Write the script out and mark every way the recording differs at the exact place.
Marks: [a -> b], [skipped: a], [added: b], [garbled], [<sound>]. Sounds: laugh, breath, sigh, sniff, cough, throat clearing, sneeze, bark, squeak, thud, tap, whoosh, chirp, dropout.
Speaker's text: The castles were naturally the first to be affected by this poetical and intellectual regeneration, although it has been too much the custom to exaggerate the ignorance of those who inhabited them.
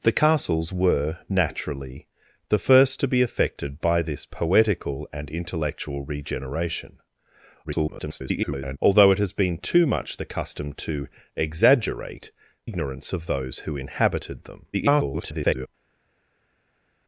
The castles were naturally the first to be affected by this poetical and intellectual regeneration, [garbled] although it has been too much the custom to exaggerate [skipped: the] ignorance of those who inhabited them. [garbled]